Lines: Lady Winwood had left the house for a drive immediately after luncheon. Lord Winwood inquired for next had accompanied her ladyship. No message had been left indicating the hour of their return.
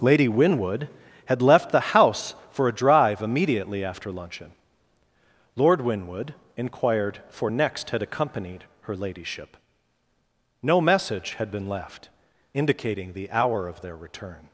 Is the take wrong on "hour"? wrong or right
right